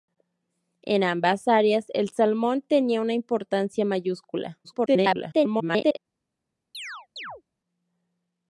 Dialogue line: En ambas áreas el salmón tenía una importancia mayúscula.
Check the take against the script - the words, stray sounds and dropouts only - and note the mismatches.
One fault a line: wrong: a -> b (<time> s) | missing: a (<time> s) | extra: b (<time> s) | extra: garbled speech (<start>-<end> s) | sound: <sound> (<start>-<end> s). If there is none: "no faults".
extra: garbled speech (4.6-6.0 s)
sound: chirp (6.7-7.4 s)